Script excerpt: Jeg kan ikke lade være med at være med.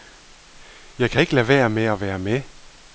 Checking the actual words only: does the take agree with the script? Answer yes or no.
yes